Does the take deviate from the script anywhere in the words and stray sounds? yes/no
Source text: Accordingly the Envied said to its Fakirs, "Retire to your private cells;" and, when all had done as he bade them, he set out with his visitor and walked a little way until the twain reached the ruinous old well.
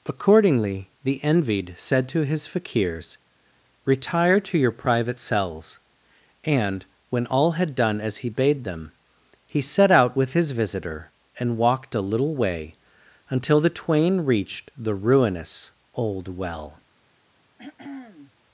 yes